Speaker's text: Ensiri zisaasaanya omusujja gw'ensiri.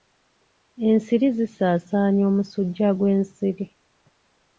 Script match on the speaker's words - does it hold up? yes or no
yes